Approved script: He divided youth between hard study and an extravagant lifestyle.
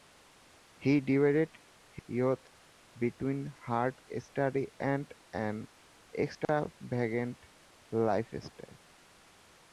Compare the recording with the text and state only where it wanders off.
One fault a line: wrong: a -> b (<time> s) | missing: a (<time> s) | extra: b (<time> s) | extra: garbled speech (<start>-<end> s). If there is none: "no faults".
no faults